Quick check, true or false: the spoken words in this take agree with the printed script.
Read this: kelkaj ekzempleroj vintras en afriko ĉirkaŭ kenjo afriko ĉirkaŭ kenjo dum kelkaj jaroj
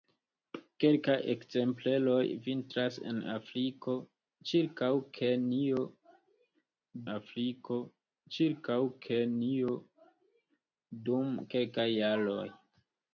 true